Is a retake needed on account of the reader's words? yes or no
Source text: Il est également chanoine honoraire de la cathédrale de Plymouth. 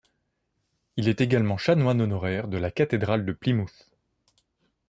no